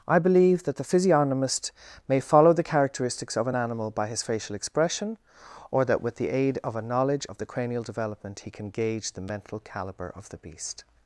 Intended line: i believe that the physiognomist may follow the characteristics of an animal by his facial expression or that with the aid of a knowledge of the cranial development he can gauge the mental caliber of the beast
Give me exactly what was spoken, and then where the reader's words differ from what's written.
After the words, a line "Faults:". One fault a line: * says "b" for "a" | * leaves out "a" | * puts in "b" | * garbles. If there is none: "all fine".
i believe that the physiognomist may follow the characteristics of an animal by his facial expression or that with the aid of a knowledge of the cranial development he can gauge the mental caliber of the beast
Faults:
all fine